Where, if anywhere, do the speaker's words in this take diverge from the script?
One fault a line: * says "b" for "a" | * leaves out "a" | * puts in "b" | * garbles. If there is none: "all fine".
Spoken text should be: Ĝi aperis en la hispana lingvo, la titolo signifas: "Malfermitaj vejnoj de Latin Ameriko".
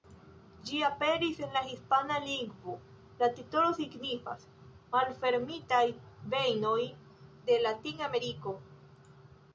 all fine